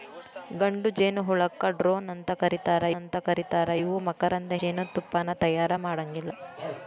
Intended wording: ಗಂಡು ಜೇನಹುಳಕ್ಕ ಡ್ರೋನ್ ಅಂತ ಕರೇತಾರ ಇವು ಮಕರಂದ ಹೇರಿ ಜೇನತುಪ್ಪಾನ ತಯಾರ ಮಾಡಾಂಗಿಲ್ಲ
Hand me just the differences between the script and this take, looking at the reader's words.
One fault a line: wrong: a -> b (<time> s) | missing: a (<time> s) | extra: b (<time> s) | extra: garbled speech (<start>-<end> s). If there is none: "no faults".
extra: ಅಂತ ಕರೇತಾರ (3.0 s)
missing: ಹೇರಿ (4.5 s)